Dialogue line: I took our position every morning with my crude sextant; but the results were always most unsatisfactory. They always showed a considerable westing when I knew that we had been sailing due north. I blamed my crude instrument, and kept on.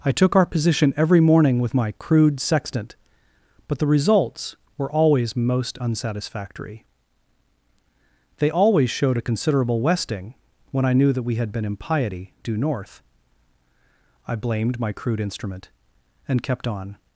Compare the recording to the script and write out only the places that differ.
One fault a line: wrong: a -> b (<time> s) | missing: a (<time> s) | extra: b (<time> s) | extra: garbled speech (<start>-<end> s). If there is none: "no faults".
wrong: sailing -> impiety (11.6 s)